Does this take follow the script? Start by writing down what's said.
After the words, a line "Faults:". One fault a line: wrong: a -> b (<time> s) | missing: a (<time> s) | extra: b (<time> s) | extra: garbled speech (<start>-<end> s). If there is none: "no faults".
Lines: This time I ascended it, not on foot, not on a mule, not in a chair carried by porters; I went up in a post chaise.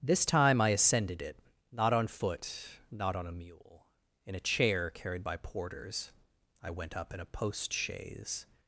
This time I ascended it, not on foot, not on a mule, in a chair carried by porters; I went up in a post chaise.
Faults:
missing: not (3.9 s)